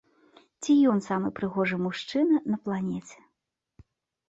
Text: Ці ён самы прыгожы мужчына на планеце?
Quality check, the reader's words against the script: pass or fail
pass